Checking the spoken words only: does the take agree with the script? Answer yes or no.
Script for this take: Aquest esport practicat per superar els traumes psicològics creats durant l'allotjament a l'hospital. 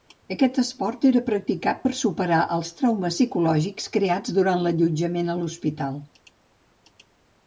no